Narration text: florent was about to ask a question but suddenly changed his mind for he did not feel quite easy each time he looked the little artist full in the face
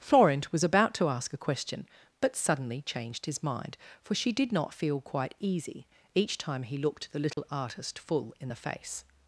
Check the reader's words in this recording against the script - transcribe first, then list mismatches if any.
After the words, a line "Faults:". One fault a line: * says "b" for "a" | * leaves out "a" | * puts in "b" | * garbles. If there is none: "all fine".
florent was about to ask a question but suddenly changed his mind for she did not feel quite easy each time he looked the little artist full in the face
Faults:
* says "she" for "he"